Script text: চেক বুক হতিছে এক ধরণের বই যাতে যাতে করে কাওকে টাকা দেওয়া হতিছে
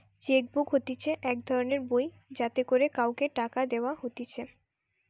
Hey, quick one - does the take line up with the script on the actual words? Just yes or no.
no